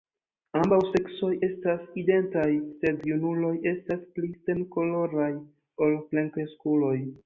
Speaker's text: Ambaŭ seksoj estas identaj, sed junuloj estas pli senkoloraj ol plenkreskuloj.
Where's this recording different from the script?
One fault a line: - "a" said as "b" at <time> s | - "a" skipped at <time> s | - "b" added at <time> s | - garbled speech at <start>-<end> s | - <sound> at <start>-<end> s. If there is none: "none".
none